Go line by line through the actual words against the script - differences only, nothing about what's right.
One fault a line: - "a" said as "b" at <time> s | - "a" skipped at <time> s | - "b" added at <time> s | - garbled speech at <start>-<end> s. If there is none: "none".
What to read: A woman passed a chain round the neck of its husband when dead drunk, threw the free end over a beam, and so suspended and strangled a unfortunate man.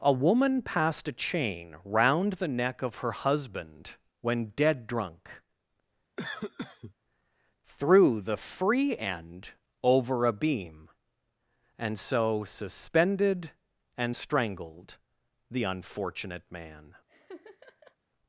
- "its" said as "her" at 3.0 s
- "a" said as "the" at 15.5 s